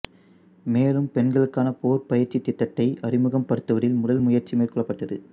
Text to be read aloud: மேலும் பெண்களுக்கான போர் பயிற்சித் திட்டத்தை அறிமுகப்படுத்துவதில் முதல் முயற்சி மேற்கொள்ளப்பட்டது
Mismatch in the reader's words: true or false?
false